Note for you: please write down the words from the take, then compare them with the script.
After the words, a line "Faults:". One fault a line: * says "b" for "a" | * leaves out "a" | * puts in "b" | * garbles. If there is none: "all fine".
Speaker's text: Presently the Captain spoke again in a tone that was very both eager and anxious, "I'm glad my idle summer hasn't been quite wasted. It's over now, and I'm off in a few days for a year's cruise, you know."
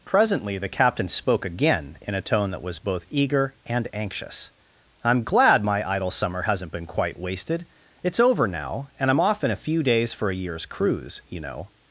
Presently the Captain spoke again in a tone that was both eager and anxious, "I'm glad my idle summer hasn't been quite wasted. It's over now, and I'm off in a few days for a year's cruise, you know."
Faults:
* leaves out "very"